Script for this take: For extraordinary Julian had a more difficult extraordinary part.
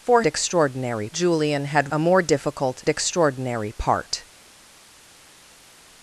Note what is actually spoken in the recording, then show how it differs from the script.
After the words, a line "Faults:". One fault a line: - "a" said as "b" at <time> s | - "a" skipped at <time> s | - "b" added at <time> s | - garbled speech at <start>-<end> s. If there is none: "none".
For extraordinary Julian had a more difficult extraordinary part.
Faults:
none